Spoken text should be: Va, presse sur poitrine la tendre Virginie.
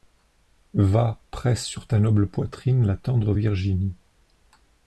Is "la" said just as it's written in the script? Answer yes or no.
yes